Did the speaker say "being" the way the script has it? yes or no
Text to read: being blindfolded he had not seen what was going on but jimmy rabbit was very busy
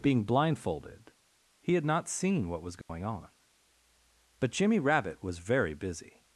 yes